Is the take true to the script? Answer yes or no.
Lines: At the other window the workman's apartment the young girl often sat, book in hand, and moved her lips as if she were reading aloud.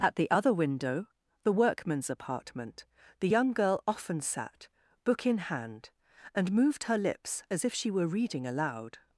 yes